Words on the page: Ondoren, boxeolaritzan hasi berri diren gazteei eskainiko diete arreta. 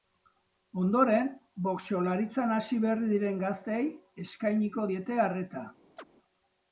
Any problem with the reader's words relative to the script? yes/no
no